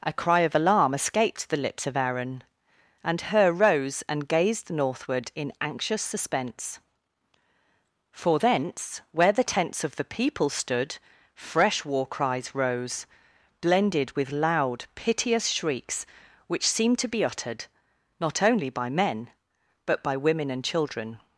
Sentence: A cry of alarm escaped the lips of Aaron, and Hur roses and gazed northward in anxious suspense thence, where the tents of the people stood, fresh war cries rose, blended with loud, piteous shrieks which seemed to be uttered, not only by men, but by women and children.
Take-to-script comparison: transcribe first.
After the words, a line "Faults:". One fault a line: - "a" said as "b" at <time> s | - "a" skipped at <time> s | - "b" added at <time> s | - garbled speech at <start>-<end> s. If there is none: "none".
A cry of alarm escaped the lips of Aaron, and Hur rose and gazed northward in anxious suspense for thence, where the tents of the people stood, fresh war cries rose, blended with loud, piteous shrieks which seemed to be uttered, not only by men, but by women and children.
Faults:
- "roses" said as "rose" at 3.5 s
- "for" added at 8.1 s